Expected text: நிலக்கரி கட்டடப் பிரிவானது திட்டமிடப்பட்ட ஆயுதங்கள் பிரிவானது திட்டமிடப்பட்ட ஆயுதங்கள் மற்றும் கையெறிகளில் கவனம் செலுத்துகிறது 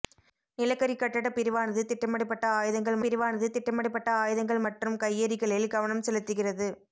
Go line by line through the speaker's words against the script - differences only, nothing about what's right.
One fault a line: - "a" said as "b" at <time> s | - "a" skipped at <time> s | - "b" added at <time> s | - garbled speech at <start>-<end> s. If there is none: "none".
none